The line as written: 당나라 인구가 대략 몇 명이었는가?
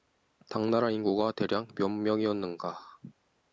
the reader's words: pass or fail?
pass